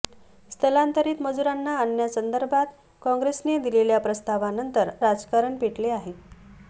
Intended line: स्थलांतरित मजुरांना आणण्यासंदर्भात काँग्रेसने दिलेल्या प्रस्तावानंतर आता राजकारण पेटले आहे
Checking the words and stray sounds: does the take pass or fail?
fail